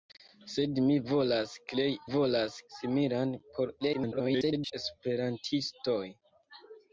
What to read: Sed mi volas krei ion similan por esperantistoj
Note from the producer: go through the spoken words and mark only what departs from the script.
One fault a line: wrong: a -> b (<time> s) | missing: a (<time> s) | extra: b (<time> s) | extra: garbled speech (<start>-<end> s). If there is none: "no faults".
wrong: ion -> volas (2.1 s)
extra: garbled speech (3.8-4.7 s)